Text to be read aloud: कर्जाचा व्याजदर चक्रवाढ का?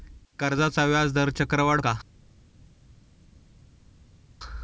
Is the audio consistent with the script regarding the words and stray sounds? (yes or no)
yes